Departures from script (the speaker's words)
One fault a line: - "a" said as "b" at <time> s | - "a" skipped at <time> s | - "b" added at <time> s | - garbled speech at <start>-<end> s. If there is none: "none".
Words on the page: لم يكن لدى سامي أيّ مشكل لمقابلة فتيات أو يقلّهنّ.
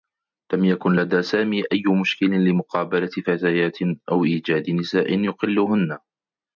- "إيجاد نساء" added at 4.2 s